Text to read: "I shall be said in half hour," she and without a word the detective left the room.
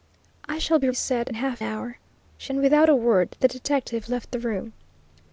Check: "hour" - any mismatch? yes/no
no